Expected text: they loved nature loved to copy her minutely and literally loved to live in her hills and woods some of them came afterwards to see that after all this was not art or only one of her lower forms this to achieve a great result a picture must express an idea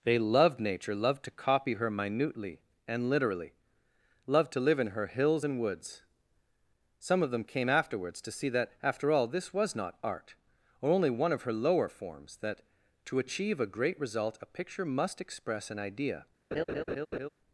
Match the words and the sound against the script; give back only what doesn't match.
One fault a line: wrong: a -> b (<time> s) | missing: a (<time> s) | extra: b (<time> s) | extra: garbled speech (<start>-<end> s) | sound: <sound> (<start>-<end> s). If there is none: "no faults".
wrong: this -> that (12.4 s)
sound: laugh (16.5-17.3 s)